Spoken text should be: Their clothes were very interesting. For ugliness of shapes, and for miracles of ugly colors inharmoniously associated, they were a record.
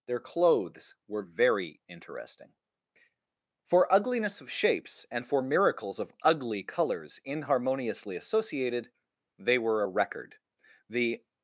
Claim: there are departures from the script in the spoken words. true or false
true